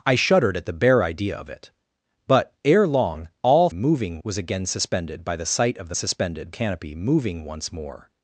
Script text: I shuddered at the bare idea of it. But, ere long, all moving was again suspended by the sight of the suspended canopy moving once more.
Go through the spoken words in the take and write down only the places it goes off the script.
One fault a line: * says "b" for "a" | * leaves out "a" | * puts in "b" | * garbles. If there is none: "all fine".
all fine